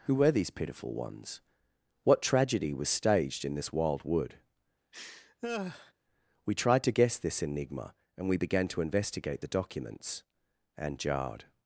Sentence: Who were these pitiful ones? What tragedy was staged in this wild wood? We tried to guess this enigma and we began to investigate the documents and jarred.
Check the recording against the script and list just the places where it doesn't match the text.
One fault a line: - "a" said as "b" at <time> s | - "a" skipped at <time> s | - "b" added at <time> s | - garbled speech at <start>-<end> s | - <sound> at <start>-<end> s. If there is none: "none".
- laugh at 4.9-5.9 s